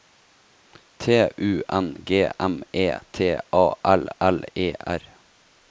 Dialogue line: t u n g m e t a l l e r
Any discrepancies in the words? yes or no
no